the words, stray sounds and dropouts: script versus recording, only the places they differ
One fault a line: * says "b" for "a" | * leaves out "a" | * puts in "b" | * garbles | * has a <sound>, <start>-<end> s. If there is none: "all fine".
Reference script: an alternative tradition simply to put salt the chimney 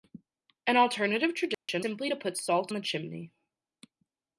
* has a dropout, 1.5-1.7 s